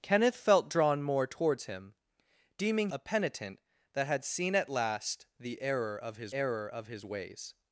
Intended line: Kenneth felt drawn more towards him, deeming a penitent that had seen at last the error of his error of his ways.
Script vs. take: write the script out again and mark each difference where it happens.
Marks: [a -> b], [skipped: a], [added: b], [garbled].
Kenneth felt drawn more towards him, deeming a penitent that had seen at last the error of his error of his ways.